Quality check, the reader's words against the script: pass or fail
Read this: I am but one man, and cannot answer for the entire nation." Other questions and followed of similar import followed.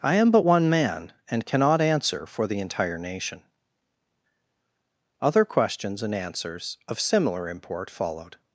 fail